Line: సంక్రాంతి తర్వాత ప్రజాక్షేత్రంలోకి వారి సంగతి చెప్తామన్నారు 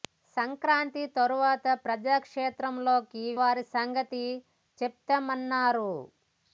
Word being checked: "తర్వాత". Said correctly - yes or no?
yes